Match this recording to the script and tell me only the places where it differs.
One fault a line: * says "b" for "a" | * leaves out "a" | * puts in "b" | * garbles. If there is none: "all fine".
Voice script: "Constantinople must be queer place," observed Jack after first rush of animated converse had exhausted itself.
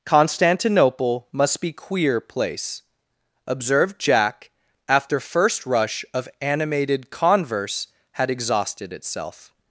all fine